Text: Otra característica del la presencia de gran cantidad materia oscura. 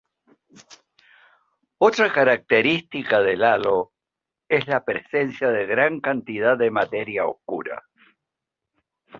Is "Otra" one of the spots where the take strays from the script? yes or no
no